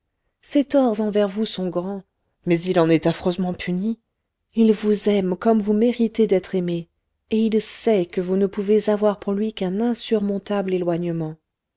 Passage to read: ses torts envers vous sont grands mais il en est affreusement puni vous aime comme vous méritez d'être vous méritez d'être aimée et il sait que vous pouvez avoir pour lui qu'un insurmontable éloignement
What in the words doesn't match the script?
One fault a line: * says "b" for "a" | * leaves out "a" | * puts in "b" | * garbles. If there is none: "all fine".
* puts in "il"
* leaves out "vous méritez d'être"
* puts in "ne"